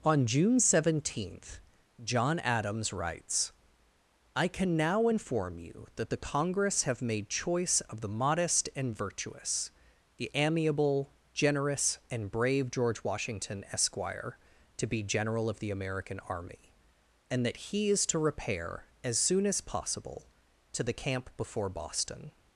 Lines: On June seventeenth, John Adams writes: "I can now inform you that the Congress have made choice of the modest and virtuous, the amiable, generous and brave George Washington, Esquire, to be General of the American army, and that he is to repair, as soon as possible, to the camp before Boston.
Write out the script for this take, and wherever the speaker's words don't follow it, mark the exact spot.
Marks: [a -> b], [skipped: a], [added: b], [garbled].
On June seventeenth, John Adams writes: "I can now inform you that the Congress have made choice of the modest and virtuous, the amiable, generous and brave George Washington, Esquire, to be General of the American army, and that he is to repair, as soon as possible, to the camp before Boston.